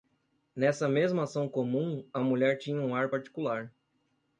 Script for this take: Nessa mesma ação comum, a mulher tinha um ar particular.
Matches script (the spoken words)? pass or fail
pass